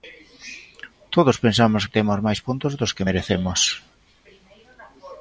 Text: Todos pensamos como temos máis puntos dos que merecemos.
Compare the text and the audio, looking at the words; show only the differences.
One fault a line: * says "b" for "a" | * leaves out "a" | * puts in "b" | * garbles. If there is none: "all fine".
* says "que" for "como"